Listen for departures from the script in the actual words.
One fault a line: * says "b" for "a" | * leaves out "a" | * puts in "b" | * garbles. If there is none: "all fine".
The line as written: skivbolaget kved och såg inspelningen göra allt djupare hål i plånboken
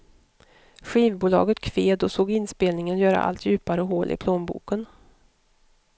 all fine